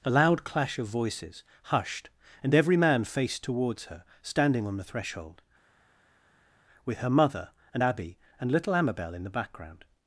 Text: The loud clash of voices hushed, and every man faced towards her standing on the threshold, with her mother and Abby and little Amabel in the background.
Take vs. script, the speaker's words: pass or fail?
fail